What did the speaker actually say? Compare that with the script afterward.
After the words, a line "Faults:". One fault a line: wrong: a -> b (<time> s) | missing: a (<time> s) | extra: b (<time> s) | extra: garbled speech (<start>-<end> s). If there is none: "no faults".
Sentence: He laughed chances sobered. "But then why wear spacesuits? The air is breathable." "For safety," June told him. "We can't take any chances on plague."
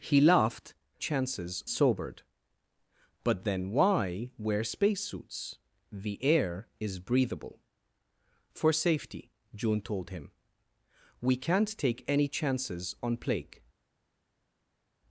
He laughed chances sobered. "But then why wear spacesuits? The air is breathable." "For safety," June told him. "We can't take any chances on plague."
Faults:
no faults